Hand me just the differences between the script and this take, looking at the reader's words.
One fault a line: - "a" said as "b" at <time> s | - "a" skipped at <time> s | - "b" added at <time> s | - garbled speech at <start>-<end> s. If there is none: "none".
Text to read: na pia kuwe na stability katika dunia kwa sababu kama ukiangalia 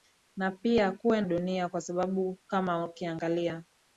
- "na stability katika" skipped at 1.2 s